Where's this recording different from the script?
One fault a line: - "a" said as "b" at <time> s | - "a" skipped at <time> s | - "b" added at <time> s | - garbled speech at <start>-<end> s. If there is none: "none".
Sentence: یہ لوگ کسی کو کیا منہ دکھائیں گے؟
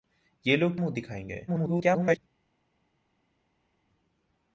- "کسی کو کیا" skipped at 0.7 s
- garbled speech at 1.5-2.2 s